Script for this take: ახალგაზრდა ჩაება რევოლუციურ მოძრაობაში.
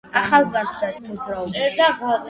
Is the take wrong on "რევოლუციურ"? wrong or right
wrong